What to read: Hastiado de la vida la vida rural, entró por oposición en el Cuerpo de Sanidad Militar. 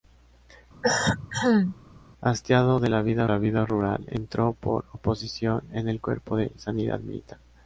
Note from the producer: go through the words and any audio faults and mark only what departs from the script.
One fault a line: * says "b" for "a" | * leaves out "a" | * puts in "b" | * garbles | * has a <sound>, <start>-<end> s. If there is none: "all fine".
* has a cough, 0.8-1.8 s